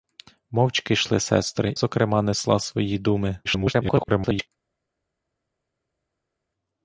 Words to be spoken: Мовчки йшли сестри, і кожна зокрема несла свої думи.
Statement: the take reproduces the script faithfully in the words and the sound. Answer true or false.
false